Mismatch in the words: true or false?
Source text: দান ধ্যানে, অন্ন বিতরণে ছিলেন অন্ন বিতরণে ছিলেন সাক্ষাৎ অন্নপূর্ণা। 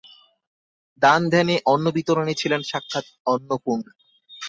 true